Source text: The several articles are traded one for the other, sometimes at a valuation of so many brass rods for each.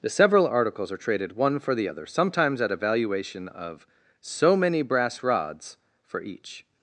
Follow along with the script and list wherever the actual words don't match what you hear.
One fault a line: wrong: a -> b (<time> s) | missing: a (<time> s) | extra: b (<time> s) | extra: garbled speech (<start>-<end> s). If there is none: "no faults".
no faults